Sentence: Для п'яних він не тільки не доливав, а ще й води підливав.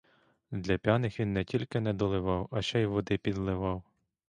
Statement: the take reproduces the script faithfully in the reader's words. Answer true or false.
true